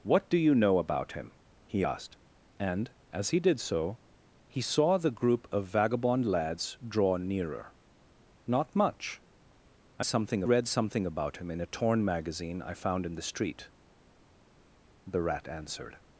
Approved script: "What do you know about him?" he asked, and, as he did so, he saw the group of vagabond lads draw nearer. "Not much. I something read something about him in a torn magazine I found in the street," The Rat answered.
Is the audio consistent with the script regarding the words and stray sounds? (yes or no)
yes